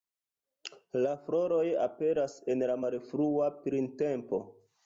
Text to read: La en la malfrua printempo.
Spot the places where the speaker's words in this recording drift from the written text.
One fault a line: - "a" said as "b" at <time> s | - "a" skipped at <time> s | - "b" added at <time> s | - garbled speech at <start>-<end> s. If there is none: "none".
- "floroj aperas" added at 1.3 s